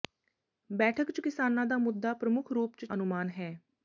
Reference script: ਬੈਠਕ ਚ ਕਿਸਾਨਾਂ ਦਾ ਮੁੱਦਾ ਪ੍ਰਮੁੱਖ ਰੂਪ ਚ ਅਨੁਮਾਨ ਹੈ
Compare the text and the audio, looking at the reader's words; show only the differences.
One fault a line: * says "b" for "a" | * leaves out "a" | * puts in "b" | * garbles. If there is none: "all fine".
all fine